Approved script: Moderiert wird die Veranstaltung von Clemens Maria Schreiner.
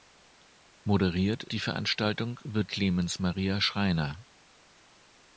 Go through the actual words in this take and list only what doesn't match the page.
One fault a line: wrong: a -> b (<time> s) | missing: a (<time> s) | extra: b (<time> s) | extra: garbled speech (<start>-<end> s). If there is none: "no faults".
missing: wird (1.4 s)
wrong: von -> wird (2.4 s)